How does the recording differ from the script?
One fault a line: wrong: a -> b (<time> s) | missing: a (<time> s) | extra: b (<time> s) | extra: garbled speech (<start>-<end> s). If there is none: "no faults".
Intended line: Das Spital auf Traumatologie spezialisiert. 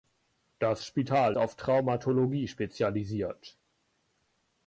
no faults